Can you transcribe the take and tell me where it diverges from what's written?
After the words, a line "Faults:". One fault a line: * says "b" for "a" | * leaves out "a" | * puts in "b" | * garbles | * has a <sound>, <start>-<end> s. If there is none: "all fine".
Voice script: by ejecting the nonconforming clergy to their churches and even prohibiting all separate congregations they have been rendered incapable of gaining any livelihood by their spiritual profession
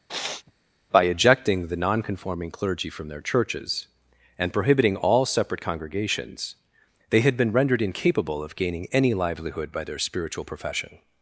by ejecting the nonconforming clergy from their churches and prohibiting all separate congregations they had been rendered incapable of gaining any livelihood by their spiritual profession
Faults:
* has a sniff, 0.1-0.5 s
* says "from" for "to"
* leaves out "even"
* says "had" for "have"